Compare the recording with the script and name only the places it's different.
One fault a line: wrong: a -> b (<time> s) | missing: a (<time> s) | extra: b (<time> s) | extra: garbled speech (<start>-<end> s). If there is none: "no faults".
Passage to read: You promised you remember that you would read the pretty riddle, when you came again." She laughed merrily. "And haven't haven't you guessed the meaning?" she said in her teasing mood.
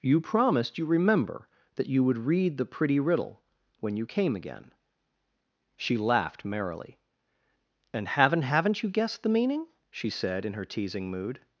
no faults